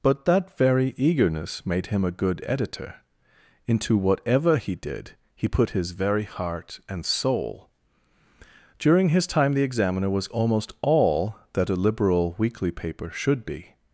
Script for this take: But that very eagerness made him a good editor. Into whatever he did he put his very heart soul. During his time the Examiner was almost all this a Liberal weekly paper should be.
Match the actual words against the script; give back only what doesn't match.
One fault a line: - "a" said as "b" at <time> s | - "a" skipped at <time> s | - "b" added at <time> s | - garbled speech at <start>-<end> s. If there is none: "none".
- "and" added at 6.9 s
- "this" said as "that" at 11.5 s